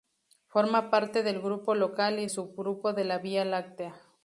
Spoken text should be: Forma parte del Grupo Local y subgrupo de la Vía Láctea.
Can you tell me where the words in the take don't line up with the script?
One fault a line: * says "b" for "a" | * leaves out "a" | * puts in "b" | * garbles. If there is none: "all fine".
all fine